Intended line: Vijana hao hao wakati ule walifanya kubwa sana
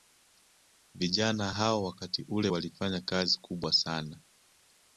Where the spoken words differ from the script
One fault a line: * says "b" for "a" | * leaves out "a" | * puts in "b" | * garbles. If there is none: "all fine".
* leaves out "hao"
* puts in "kazi"